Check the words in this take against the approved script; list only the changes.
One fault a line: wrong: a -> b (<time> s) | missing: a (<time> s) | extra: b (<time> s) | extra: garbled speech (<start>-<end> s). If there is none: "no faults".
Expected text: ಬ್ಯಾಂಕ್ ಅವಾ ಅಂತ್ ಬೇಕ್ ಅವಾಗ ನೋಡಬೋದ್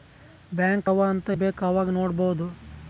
no faults